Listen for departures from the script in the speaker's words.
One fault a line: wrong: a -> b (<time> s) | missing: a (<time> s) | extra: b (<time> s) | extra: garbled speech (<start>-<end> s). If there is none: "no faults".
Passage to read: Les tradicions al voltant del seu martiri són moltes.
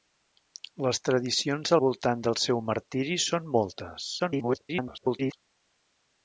missing: al (1.8 s)
extra: garbled speech (4.2-5.3 s)